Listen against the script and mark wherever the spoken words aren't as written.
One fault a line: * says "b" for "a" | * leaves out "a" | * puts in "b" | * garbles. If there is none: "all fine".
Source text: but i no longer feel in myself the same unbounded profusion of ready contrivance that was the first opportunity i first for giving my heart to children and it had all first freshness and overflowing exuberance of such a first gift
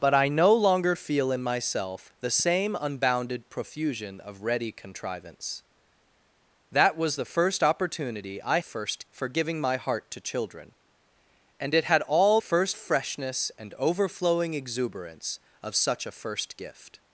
all fine